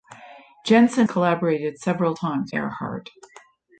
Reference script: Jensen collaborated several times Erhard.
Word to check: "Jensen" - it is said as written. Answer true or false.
true